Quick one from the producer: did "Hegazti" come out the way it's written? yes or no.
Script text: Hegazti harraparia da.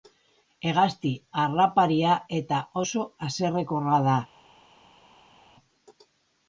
yes